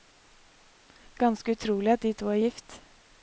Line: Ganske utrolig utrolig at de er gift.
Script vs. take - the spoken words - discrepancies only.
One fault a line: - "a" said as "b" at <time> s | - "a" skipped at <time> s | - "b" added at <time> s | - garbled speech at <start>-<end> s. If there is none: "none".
- "utrolig" skipped at 1.9 s
- "to" added at 2.1 s